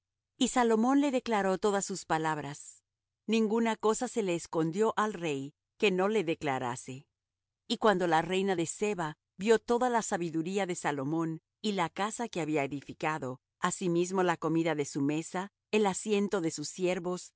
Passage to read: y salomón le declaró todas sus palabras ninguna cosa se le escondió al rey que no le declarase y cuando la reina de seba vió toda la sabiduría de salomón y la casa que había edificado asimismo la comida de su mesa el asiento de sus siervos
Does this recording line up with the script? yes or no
yes